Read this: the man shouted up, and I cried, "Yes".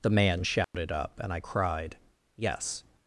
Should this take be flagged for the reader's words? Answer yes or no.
no